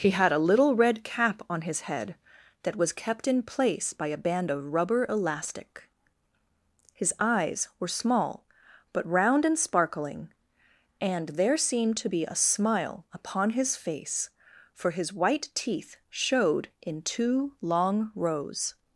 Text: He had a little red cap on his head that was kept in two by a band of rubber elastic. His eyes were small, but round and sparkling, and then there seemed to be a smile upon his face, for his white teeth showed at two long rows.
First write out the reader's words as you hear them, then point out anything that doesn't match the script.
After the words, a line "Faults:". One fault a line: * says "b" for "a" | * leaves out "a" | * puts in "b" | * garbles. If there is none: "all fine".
He had a little red cap on his head that was kept in place by a band of rubber elastic. His eyes were small, but round and sparkling, and there seemed to be a smile upon his face, for his white teeth showed in two long rows.
Faults:
* says "place" for "two"
* leaves out "then"
* says "in" for "at"